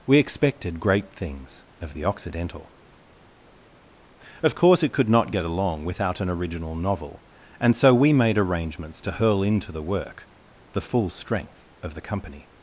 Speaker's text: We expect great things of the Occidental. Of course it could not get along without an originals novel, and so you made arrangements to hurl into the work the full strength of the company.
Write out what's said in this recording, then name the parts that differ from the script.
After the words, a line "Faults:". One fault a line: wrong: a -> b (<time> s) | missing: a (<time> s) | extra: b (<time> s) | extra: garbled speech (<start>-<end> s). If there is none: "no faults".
We expected great things of the Occidental. Of course it could not get along without an original novel, and so we made arrangements to hurl into the work the full strength of the company.
Faults:
wrong: expect -> expected (0.2 s)
wrong: originals -> original (6.3 s)
wrong: you -> we (7.9 s)